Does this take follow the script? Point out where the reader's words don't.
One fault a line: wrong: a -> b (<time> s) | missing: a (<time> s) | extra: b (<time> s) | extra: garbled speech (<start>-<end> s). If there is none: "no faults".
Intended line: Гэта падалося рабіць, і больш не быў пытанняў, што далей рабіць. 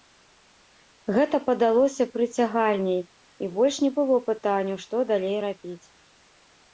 wrong: рабіць -> прыцягальней (2.1 s)
wrong: быў -> было (4.0 s)